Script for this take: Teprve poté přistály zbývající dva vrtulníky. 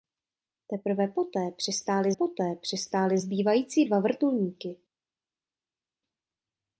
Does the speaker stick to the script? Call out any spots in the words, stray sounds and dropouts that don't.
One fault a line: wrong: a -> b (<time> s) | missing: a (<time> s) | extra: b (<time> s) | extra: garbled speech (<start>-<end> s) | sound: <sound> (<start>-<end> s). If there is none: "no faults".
extra: poté přistály (2.1 s)